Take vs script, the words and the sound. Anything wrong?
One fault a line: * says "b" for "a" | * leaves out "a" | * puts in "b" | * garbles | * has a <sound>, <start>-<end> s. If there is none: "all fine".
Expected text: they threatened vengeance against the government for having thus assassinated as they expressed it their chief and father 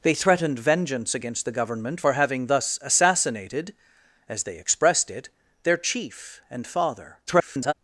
* garbles